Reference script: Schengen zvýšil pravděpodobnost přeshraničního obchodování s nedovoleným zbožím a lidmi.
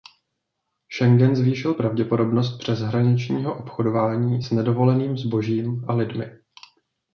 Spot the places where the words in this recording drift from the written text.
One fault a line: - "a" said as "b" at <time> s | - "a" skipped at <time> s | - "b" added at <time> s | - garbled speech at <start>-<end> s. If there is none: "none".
none